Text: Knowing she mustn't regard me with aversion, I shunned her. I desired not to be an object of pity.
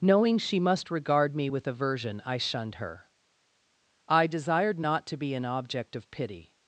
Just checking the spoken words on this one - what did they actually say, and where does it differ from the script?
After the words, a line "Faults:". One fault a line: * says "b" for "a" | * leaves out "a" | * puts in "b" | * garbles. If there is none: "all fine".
Knowing she must regard me with aversion, I shunned her. I desired not to be an object of pity.
Faults:
* says "must" for "mustn't"